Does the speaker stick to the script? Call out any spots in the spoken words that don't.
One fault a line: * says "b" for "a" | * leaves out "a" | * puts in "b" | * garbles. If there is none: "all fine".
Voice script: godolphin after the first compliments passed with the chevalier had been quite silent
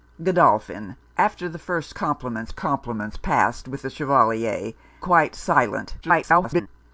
* puts in "compliments"
* leaves out "had been"
* garbles